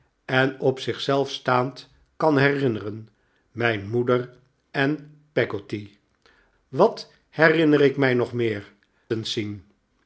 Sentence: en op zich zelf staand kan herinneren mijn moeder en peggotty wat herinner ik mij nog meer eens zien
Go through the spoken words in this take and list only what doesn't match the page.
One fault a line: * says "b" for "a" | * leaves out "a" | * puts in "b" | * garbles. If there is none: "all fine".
all fine